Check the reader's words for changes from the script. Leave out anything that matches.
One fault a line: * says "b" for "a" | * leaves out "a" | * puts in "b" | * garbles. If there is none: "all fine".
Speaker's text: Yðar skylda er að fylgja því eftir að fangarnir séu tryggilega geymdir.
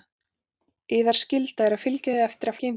* leaves out "fangarnir séu tryggilega"